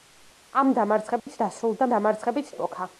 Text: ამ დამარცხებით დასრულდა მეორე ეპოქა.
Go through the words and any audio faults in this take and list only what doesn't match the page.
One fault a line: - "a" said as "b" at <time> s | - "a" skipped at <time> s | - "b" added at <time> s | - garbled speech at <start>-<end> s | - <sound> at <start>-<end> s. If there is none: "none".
- dropout at 1.2-1.3 s
- "მეორე" said as "დამარცხებით" at 1.9 s